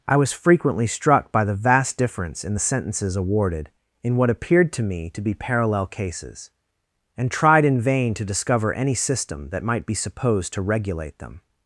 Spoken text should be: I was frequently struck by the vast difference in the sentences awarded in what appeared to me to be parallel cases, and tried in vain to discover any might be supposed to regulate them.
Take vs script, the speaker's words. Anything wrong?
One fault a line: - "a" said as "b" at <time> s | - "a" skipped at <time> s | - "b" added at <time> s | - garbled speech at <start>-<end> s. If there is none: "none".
- "system that" added at 8.9 s